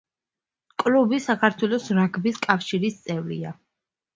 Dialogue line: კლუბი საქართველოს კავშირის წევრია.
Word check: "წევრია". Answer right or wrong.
right